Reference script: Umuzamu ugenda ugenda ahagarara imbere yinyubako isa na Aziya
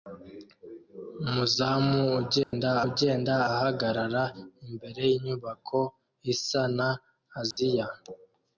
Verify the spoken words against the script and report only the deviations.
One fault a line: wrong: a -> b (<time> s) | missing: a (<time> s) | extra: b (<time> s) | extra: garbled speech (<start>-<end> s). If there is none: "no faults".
no faults